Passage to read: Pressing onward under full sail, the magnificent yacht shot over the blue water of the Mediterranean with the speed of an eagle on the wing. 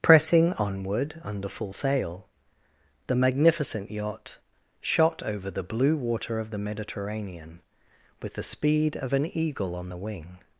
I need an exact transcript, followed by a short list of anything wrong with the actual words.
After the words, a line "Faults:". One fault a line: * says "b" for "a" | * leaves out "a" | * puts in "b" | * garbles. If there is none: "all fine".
Pressing onward under full sail, the magnificent yacht shot over the blue water of the Mediterranean with the speed of an eagle on the wing.
Faults:
all fine